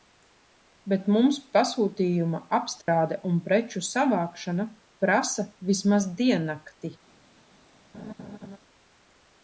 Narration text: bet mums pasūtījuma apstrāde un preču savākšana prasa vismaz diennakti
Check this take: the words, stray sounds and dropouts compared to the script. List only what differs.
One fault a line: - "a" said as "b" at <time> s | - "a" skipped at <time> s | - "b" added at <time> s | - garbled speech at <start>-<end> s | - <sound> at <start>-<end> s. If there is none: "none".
- dropout at 2.8-2.9 s
- laugh at 7.9-8.6 s